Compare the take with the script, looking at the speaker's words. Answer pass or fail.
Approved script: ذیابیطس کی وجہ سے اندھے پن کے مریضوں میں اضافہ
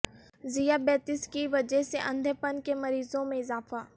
pass